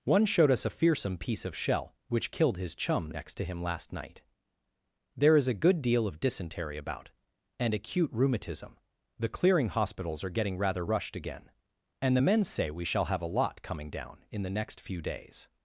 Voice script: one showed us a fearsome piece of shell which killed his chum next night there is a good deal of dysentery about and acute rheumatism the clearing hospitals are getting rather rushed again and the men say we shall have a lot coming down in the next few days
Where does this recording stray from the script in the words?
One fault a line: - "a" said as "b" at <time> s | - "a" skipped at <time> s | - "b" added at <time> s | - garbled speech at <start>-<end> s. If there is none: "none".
- "to him last" added at 3.4 s